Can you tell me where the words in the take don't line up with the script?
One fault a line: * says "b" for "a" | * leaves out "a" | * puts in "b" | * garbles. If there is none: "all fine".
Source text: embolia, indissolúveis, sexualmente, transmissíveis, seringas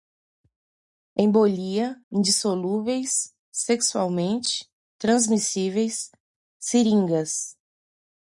all fine